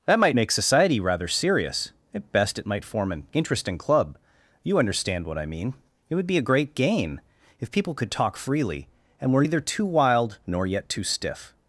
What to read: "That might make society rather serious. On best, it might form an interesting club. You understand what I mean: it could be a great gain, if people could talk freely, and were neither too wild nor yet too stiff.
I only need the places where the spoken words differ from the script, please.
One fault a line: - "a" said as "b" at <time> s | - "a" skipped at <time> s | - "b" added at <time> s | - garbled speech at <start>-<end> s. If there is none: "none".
- "On" said as "At" at 2.1 s
- "could" said as "would" at 6.1 s